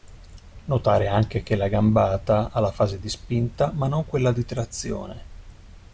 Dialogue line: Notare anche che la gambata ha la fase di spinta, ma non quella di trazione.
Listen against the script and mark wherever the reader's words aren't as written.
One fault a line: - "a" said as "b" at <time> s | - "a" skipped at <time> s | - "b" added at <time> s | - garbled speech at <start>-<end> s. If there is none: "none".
none